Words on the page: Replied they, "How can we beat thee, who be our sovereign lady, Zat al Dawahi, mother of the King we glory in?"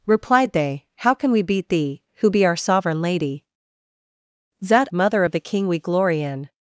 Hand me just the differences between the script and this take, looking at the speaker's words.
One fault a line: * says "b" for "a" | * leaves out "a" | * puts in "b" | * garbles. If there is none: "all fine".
* leaves out "al Dawahi"